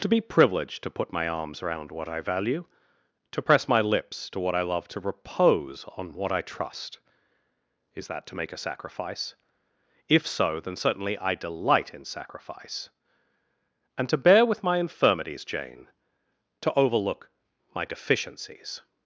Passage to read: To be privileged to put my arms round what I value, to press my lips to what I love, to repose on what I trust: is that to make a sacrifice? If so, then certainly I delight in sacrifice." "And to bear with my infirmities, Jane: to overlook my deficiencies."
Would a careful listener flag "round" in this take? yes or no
yes